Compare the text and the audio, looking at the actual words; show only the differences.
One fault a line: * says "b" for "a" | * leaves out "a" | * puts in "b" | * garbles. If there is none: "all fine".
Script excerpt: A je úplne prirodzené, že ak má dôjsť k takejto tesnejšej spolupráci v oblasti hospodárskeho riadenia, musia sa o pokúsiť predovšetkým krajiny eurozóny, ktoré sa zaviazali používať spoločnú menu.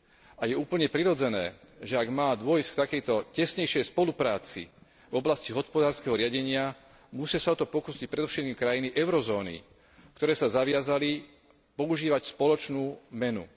* puts in "to"